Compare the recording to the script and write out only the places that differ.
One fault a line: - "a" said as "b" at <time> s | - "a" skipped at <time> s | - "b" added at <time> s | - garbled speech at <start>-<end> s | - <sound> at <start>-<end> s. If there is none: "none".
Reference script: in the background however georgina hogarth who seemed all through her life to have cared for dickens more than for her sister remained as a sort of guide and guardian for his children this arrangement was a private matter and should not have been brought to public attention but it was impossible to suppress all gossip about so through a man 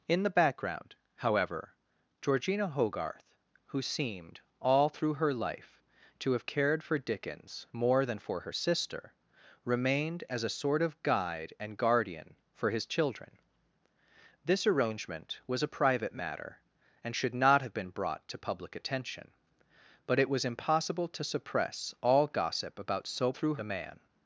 none